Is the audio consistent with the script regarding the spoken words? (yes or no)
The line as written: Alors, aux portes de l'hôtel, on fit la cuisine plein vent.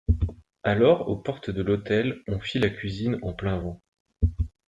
no